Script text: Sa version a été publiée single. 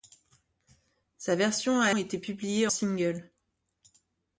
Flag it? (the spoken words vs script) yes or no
no